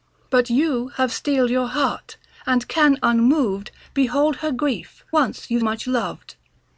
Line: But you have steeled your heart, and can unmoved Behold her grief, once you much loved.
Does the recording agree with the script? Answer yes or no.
yes